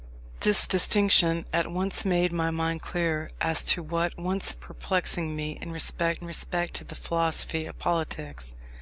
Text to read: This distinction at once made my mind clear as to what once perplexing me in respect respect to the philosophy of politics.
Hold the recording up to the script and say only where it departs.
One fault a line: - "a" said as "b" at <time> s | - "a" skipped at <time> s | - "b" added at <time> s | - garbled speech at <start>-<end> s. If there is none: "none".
none